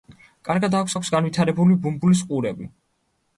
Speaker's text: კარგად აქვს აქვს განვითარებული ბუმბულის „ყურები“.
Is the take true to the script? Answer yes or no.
yes